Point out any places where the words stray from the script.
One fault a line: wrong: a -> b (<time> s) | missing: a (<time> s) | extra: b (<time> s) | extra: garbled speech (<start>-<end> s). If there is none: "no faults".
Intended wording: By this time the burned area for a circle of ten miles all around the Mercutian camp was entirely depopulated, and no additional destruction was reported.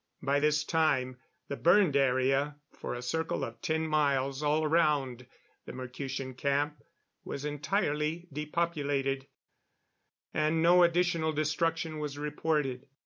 no faults